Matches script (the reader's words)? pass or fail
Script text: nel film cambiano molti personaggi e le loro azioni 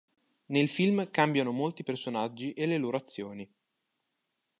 pass